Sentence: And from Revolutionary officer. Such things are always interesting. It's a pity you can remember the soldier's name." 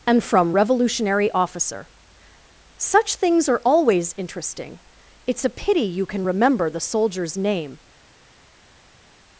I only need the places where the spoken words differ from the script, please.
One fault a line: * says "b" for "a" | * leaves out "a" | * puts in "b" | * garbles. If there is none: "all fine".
all fine